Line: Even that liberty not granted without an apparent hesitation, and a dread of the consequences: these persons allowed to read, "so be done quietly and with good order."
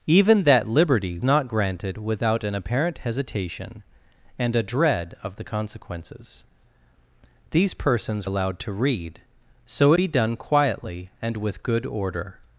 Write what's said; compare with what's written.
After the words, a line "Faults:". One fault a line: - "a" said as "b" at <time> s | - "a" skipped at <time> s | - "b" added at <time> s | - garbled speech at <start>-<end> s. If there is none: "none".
Even that liberty not granted without an apparent hesitation, and a dread of the consequences: these persons allowed to read, "so be done quietly and with good order."
Faults:
none